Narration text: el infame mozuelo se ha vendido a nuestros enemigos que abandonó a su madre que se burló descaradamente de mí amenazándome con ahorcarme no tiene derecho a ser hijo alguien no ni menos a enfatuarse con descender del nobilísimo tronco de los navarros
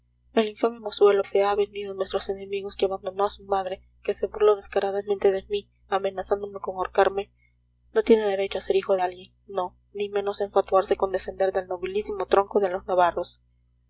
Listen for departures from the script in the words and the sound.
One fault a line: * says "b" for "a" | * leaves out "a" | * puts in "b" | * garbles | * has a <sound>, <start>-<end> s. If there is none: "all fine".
all fine